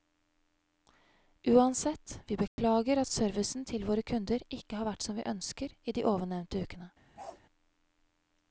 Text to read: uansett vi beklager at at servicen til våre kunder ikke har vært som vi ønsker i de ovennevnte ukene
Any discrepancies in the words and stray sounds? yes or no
yes